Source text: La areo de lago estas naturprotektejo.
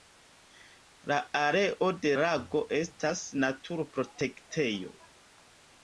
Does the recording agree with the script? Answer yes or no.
yes